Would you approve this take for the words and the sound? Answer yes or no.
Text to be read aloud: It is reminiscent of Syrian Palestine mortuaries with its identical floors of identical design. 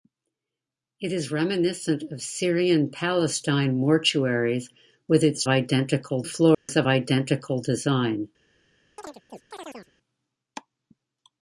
no